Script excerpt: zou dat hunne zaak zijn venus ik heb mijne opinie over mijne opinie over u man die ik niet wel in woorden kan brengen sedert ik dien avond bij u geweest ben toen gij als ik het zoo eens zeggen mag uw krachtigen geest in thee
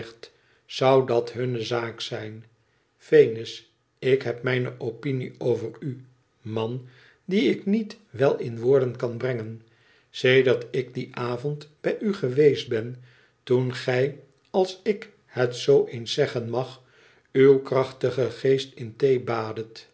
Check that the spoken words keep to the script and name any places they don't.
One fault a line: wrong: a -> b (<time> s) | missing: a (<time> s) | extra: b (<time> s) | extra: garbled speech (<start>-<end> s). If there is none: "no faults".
missing: mijne opinie over (5.7 s)